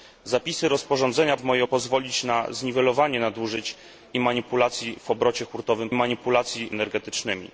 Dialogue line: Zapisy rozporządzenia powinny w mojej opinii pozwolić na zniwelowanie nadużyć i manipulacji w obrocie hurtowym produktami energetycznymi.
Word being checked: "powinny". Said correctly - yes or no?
no